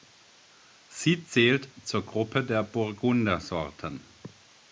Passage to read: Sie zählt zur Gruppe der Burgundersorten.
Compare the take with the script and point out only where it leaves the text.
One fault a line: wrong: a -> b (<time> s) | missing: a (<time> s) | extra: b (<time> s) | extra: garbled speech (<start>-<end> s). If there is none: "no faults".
no faults